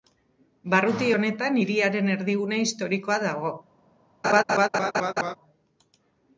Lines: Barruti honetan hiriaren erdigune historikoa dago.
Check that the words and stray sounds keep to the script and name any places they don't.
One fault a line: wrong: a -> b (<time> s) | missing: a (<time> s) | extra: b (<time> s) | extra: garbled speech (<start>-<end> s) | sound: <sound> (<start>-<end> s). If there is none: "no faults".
sound: laugh (4.2-5.4 s)